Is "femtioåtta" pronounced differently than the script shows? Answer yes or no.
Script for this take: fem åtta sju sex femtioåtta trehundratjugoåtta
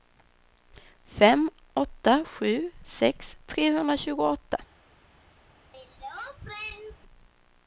yes